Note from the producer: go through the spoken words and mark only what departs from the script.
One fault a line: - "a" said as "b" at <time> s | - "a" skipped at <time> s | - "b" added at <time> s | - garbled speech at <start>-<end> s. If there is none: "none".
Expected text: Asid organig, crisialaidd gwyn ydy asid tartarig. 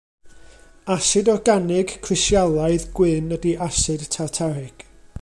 none